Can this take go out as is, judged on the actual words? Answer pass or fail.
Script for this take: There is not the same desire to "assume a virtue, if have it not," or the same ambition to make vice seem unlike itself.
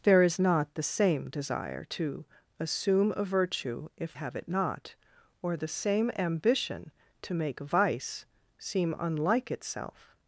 pass